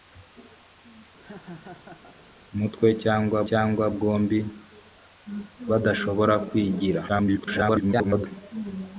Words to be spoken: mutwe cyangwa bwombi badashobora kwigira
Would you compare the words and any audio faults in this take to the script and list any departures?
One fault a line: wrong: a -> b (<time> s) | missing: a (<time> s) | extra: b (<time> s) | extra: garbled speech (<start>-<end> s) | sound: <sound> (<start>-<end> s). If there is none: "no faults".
sound: laugh (1.2-2.2 s)
extra: cyangwa (3.5 s)
extra: garbled speech (7.1-8.3 s)